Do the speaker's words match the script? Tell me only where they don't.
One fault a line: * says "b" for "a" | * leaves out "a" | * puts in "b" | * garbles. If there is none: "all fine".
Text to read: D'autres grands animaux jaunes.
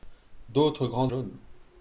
* leaves out "animaux"